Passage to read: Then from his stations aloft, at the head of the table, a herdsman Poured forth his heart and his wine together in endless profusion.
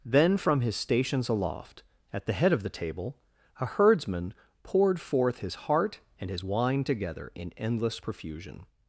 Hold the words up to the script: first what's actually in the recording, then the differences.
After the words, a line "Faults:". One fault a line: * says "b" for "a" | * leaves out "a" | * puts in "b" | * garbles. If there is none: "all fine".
Then from his stations aloft, at the head of the table, a herdsman Poured forth his heart and his wine together in endless profusion.
Faults:
all fine